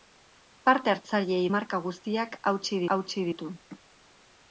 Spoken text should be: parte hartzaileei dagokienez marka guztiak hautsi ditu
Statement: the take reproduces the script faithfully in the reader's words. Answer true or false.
false